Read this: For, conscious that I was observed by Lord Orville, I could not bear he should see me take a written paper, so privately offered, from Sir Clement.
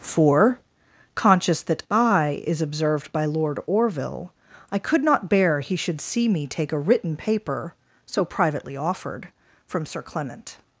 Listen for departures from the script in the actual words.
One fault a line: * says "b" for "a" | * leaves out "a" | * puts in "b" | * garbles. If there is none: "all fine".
* says "is" for "was"